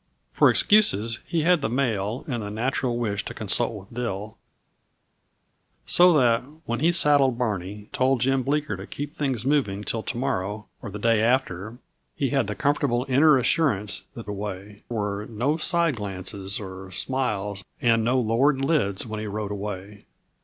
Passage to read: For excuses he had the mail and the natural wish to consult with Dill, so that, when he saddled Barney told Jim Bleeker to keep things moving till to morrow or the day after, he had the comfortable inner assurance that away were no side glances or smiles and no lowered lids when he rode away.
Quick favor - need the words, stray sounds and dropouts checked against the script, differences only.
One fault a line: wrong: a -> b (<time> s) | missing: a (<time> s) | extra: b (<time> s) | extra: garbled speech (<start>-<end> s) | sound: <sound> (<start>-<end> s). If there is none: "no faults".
no faults